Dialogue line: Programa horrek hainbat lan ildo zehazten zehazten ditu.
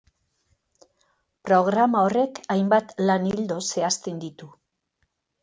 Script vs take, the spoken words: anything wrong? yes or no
yes